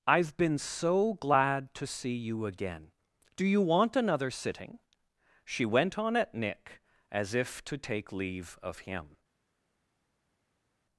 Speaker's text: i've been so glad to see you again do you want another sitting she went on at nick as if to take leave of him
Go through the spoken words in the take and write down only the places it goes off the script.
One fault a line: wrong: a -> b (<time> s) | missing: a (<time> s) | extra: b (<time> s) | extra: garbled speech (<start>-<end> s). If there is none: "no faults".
no faults